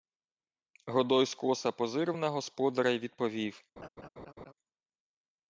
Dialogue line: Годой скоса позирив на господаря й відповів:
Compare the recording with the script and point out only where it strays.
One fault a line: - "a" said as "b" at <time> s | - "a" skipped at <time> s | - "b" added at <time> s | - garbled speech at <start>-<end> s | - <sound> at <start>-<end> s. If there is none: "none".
- laugh at 3.8-4.5 s